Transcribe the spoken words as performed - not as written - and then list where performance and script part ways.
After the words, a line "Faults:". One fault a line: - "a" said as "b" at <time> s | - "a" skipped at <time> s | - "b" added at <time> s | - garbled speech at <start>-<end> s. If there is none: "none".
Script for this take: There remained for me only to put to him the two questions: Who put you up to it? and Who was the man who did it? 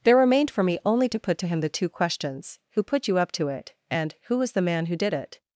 There remained for me only to put to him the two questions: Who put you up to it? and Who was the man who did it?
Faults:
none